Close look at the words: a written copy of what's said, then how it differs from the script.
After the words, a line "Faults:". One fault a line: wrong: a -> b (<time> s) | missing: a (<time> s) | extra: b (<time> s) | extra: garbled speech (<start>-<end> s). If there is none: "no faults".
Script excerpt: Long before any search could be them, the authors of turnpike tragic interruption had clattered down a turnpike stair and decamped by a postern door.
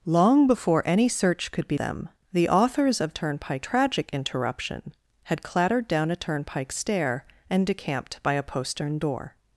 Long before any search could be them, the authors of turnpike tragic interruption had clattered down a turnpike stair and decamped by a postern door.
Faults:
no faults